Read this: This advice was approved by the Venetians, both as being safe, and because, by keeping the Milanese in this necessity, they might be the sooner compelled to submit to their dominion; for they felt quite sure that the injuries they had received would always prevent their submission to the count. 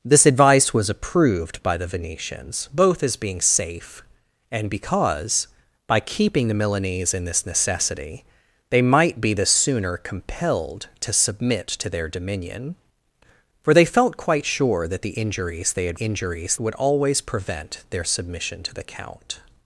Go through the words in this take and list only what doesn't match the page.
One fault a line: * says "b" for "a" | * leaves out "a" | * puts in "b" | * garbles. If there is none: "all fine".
* says "injuries" for "received"